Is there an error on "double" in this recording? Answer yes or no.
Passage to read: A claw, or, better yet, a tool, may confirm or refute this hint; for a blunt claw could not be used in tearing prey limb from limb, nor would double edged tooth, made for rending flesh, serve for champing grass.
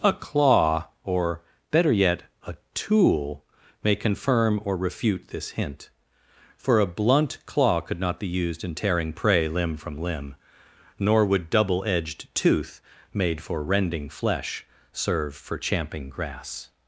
no